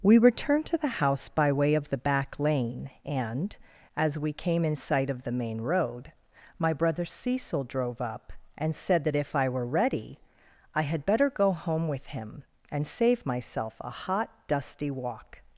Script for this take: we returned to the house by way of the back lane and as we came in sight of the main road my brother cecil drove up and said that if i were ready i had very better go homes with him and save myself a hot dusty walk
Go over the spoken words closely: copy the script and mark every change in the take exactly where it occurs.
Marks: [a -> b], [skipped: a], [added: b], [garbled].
we returned to the house by way of the back lane and as we came in sight of the main road my brother cecil drove up and said that if i were ready i had [skipped: very] better go [homes -> home] with him and save myself a hot dusty walk